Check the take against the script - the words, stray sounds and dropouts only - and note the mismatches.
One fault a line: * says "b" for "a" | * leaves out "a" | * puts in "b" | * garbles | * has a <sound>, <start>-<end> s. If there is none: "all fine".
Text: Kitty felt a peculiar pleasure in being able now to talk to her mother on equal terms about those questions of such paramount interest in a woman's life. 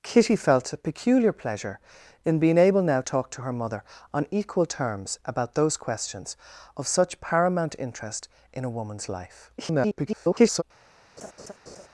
* leaves out "to"
* garbles
* has a laugh, 11.2-11.9 s